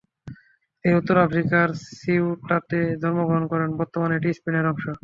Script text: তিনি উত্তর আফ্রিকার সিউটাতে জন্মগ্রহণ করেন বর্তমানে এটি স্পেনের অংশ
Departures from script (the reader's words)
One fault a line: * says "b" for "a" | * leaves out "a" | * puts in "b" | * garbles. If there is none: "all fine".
all fine